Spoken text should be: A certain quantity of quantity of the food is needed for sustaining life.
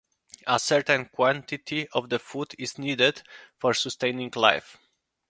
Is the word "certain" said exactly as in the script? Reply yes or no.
yes